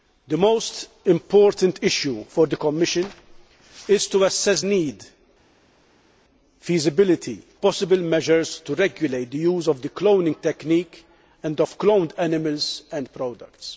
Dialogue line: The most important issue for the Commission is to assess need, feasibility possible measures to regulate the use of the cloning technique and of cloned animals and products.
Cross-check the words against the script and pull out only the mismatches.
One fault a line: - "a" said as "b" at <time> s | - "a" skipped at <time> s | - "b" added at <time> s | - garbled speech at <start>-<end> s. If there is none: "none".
none